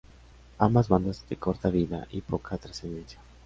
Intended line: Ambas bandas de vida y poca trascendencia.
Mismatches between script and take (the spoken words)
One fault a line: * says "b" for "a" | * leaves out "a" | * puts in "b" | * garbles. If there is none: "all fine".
* puts in "corta"